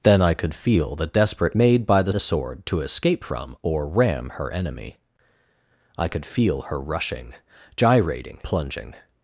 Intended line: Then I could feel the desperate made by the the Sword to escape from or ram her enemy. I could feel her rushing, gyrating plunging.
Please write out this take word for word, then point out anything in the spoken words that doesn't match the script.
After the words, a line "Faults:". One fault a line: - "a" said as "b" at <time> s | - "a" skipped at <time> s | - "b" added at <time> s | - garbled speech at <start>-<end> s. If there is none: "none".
Then I could feel the desperate made by the the Sword to escape from or ram her enemy. I could feel her rushing, gyrating plunging.
Faults:
none